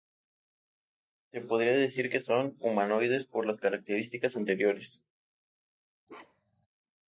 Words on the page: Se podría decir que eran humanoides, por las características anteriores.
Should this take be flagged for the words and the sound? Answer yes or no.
yes